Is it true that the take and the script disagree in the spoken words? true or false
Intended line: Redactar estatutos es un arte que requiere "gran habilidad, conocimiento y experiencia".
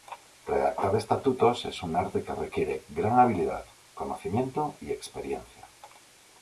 false